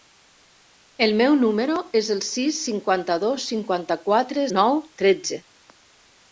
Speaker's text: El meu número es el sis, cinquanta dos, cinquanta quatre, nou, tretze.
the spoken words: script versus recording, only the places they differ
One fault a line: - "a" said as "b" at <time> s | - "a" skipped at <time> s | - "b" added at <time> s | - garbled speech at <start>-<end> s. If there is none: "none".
none